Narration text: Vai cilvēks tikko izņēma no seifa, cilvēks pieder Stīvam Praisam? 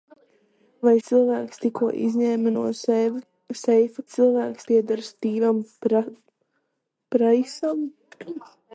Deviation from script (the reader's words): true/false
false